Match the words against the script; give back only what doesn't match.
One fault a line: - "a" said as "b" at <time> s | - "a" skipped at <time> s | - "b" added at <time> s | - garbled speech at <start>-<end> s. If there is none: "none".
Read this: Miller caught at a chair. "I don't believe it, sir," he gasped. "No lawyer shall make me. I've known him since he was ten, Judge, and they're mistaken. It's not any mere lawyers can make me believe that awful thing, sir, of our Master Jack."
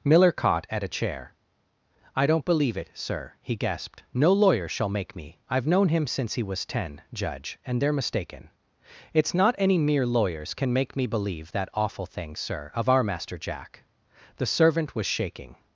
- "The servant was shaking" added at 14.4 s